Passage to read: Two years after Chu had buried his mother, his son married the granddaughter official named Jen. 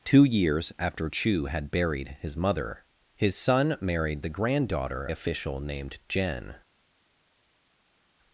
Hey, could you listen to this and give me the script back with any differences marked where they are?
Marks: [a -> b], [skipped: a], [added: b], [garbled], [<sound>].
Two years after Chu had buried his mother, his son married the granddaughter official named Jen.